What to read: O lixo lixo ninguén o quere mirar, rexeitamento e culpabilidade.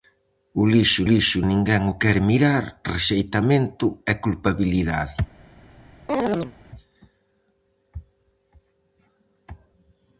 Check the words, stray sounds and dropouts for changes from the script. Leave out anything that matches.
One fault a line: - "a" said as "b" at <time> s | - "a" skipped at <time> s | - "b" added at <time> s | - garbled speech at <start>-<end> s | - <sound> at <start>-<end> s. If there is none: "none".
- chirp at 6.1-6.5 s